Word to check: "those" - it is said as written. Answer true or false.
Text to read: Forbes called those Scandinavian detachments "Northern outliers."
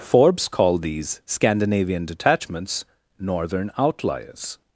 false